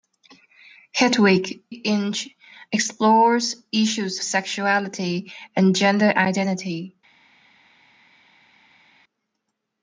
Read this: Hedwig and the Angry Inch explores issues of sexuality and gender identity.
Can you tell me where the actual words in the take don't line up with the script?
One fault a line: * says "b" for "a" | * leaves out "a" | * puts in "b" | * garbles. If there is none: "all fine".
* leaves out "and the Angry"
* leaves out "of"